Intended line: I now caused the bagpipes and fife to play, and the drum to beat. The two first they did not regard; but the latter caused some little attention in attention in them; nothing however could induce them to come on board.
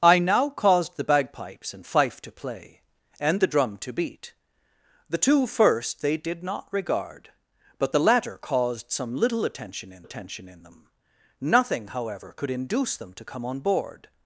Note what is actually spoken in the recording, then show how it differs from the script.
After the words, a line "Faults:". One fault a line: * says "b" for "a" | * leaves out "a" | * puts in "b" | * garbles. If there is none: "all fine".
I now caused the bagpipes and fife to play, and the drum to beat. The two first they did not regard; but the latter caused some little attention in attention in them; nothing however could induce them to come on board.
Faults:
all fine